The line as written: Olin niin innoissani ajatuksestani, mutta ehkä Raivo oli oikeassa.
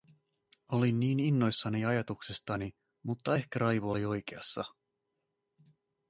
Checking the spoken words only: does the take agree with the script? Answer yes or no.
yes